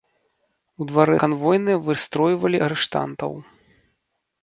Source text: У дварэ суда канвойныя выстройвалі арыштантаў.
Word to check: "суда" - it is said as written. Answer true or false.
false